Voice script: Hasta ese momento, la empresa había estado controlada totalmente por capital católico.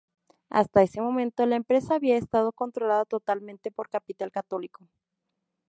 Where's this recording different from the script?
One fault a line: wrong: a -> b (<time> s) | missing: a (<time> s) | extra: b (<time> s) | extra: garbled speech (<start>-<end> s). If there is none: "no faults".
no faults